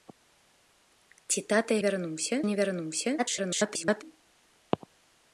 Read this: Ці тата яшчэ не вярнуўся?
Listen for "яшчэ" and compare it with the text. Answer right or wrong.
wrong